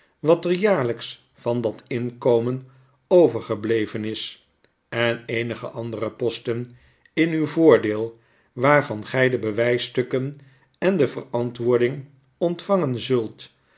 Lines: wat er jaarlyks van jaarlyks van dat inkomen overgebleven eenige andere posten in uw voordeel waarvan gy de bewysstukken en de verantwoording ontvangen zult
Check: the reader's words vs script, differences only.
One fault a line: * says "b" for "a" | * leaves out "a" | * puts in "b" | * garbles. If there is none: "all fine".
* leaves out "jaarlyks van"
* puts in "is en"